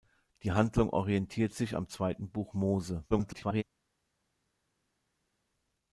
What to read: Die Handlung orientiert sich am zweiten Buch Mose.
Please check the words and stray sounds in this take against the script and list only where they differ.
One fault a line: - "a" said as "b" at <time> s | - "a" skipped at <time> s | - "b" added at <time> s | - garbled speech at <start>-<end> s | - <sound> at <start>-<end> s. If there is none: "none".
- garbled speech at 3.1-3.6 s